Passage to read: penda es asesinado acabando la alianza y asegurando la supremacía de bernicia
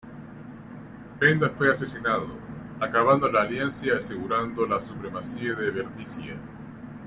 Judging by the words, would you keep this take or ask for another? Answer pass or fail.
fail